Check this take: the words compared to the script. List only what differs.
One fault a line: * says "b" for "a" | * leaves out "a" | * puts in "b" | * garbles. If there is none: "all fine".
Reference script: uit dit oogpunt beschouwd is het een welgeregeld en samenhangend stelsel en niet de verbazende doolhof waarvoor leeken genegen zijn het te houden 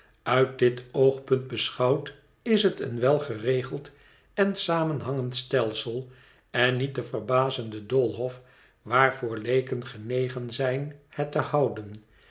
all fine